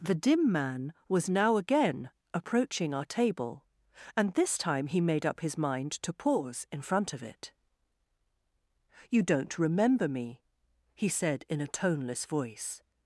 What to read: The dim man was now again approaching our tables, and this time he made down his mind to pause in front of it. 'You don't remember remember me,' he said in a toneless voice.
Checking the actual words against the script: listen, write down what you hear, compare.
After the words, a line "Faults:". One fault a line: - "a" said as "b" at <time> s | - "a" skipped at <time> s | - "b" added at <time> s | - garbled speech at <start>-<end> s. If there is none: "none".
The dim man was now again approaching our table, and this time he made up his mind to pause in front of it. 'You don't remember me,' he said in a toneless voice.
Faults:
- "tables" said as "table" at 3.0 s
- "down" said as "up" at 5.3 s
- "remember" skipped at 10.1 s